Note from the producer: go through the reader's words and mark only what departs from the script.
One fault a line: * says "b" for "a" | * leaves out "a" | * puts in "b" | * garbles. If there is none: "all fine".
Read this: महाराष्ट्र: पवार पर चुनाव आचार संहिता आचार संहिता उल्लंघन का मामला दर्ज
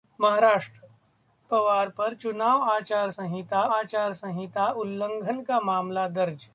all fine